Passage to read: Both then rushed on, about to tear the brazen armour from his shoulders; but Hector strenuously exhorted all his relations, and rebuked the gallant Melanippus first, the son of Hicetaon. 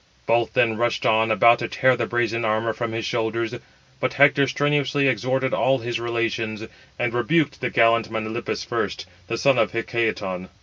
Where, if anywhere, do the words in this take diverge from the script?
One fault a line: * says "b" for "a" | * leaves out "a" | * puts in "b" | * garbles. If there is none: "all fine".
all fine